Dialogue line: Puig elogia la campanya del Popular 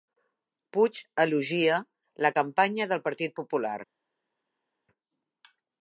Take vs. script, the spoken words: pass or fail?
fail